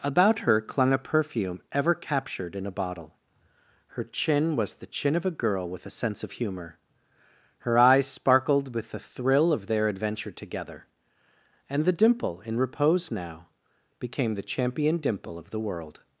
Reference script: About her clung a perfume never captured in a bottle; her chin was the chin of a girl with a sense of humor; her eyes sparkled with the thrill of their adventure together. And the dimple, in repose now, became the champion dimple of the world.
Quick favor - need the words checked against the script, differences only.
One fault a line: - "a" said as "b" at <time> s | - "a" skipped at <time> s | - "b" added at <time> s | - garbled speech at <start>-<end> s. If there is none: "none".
- "never" said as "ever" at 1.7 s